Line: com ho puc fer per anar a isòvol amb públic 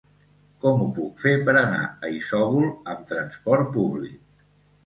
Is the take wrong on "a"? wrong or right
right